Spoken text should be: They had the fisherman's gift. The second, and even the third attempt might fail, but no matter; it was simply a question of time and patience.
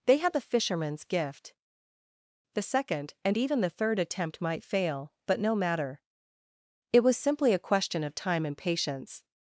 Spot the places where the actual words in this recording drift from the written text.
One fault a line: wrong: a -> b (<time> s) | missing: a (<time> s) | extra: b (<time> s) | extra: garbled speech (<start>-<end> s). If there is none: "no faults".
no faults